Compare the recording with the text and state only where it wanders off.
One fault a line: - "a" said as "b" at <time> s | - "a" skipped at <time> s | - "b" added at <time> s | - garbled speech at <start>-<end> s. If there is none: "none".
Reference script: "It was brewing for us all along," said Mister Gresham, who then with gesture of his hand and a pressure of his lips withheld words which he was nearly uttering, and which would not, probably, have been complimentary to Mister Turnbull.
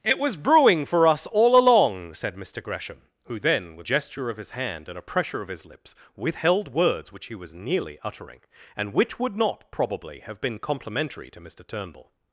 none